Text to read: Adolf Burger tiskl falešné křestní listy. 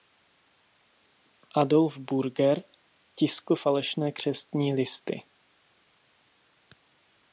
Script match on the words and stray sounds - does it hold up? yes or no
yes